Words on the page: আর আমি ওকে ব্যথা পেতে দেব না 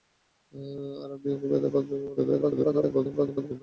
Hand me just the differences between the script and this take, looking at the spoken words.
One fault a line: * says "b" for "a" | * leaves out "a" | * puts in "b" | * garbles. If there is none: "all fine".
* garbles